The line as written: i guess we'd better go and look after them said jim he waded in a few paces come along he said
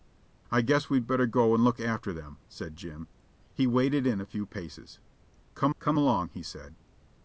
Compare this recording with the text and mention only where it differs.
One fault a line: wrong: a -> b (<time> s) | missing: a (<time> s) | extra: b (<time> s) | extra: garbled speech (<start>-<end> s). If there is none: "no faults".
extra: come (5.8 s)